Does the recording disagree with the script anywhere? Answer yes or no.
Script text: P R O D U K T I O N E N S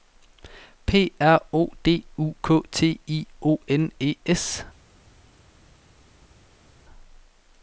yes